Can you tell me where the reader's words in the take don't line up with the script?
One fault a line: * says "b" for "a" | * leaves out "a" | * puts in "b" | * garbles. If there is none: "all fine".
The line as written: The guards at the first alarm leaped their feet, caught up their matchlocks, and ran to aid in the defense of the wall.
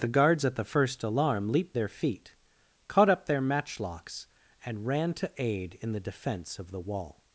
all fine